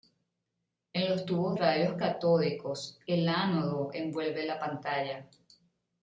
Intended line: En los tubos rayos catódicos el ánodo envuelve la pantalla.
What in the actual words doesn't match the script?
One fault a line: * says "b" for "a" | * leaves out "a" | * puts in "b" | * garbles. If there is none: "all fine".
all fine